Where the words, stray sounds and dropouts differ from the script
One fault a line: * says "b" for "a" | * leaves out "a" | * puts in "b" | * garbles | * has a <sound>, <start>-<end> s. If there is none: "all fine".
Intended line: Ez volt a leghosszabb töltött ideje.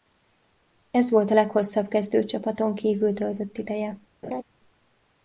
* puts in "kezdőcsapaton kívül"
* has a laugh, 4.2-4.4 s